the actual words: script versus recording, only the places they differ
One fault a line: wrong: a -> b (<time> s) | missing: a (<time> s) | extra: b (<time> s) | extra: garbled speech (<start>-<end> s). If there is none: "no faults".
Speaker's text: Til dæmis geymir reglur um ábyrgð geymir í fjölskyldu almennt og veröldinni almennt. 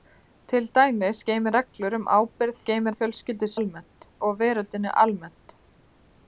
no faults